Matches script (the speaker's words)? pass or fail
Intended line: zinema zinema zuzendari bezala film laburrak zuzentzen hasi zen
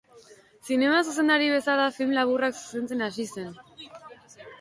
fail